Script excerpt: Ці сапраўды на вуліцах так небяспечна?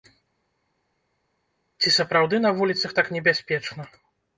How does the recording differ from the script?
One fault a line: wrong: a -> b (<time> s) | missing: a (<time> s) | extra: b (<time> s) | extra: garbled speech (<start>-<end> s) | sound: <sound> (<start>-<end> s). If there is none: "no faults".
no faults